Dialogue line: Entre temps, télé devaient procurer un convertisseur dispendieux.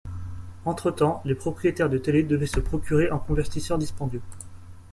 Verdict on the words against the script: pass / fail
fail